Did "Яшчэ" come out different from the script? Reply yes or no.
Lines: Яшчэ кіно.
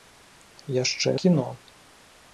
no